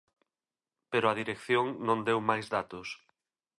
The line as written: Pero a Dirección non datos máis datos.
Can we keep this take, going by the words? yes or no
no